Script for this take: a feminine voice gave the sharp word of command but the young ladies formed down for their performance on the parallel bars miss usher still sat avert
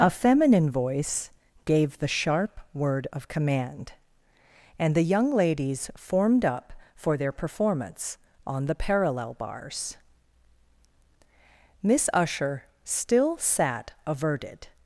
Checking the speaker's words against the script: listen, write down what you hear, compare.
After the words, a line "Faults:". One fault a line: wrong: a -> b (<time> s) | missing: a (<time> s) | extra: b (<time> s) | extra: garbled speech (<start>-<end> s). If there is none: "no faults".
a feminine voice gave the sharp word of command and the young ladies formed up for their performance on the parallel bars miss usher still sat averted
Faults:
wrong: but -> and (4.8 s)
wrong: down -> up (6.4 s)
wrong: avert -> averted (14.1 s)